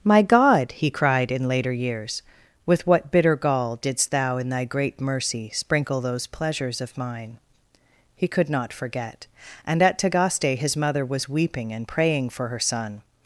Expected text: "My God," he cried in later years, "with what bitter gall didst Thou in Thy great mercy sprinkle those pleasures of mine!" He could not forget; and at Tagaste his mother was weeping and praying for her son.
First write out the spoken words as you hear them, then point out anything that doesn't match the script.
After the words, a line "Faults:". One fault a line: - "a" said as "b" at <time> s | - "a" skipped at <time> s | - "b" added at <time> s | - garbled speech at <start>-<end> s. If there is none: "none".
"My God," he cried in later years, "with what bitter gall didst Thou in Thy great mercy sprinkle those pleasures of mine!" He could not forget; and at Tagaste his mother was weeping and praying for her son.
Faults:
none